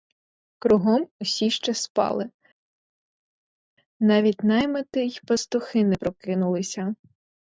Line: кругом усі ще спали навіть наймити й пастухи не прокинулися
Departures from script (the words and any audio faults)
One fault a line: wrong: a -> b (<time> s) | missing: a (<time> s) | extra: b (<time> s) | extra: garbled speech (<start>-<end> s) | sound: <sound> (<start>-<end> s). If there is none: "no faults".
no faults